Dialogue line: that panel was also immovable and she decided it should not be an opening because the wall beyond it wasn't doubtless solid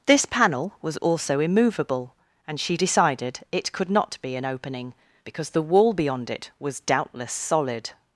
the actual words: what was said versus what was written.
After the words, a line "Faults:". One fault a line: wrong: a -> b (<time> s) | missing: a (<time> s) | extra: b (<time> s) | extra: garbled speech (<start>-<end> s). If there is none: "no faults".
this panel was also immovable and she decided it could not be an opening because the wall beyond it was doubtless solid
Faults:
wrong: that -> this (0.1 s)
wrong: should -> could (3.7 s)
wrong: wasn't -> was (6.6 s)